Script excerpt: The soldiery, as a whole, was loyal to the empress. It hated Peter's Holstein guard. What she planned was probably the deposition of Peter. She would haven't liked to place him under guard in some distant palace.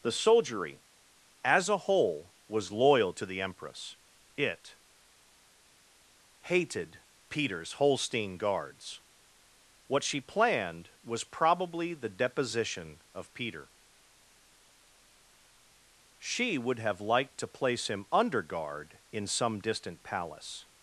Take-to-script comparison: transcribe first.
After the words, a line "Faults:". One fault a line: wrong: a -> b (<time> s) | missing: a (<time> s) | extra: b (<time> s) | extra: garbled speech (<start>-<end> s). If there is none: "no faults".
The soldiery, as a whole, was loyal to the empress. It hated Peter's Holstein guards. What she planned was probably the deposition of Peter. She would have liked to place him under guard in some distant palace.
Faults:
wrong: guard -> guards (8.4 s)
wrong: haven't -> have (16.8 s)